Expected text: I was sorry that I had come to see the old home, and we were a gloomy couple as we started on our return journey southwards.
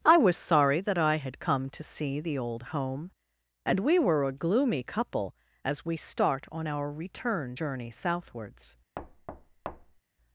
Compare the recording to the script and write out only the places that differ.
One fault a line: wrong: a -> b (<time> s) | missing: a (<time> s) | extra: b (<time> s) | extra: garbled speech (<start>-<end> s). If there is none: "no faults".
wrong: started -> start (6.0 s)